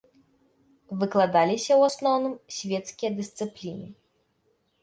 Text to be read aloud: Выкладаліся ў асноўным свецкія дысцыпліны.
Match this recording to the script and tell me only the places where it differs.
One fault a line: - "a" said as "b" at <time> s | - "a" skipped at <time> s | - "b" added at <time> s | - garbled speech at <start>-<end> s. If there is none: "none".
none